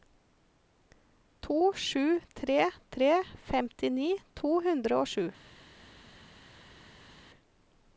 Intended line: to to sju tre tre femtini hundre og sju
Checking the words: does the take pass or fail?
fail